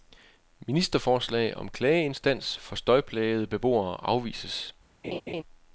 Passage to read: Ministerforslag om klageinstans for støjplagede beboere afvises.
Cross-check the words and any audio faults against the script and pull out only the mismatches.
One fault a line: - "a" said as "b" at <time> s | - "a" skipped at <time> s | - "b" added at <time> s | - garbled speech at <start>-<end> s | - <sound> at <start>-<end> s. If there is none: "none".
- laugh at 5.0-5.4 s